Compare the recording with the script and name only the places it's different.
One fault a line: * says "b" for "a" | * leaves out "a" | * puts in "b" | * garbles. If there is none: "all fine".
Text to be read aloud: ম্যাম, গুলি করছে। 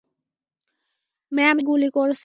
all fine